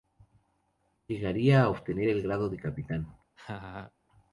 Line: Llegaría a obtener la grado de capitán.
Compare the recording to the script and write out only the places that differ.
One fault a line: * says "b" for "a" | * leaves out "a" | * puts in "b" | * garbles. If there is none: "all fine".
* says "el" for "la"